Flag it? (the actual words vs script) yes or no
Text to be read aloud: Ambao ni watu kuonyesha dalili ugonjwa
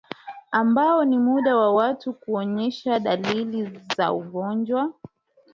yes